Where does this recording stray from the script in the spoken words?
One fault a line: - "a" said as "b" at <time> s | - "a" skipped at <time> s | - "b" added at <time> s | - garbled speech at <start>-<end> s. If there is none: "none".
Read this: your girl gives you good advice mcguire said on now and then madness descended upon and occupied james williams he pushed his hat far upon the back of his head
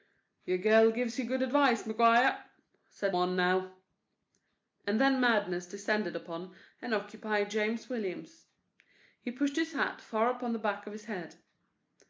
none